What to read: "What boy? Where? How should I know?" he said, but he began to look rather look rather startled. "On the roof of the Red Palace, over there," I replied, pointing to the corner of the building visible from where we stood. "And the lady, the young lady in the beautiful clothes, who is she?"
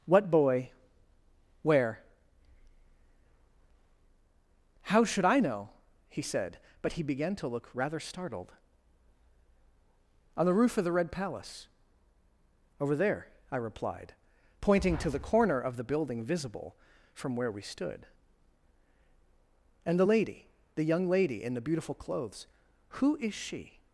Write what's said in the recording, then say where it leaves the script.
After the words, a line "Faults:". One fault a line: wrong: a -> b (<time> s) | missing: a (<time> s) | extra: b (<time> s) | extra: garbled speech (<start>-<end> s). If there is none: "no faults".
"What boy? Where? How should I know?" he said, but he began to look rather startled. "On the roof of the Red Palace, over there," I replied, pointing to the corner of the building visible from where we stood. "And the lady, the young lady in the beautiful clothes, who is she?"
Faults:
missing: look rather (8.0 s)